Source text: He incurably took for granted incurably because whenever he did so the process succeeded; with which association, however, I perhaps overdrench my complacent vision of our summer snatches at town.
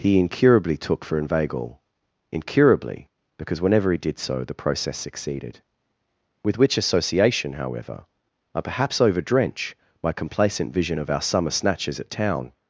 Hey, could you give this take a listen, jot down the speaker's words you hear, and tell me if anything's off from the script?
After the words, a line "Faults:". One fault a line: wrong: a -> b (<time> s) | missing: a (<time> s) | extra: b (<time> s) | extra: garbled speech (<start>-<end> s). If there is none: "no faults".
He incurably took for inveigle incurably because whenever he did so the process succeeded; with which association, however, I perhaps overdrench my complacent vision of our summer snatches at town.
Faults:
wrong: granted -> inveigle (1.2 s)